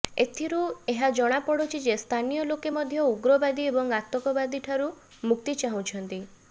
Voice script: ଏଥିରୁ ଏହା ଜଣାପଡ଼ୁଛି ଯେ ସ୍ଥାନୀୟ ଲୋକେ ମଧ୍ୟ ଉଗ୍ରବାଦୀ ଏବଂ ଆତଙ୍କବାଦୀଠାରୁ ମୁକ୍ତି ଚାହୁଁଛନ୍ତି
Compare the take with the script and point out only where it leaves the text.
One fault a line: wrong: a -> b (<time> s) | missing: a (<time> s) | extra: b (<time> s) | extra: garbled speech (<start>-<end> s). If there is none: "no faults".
no faults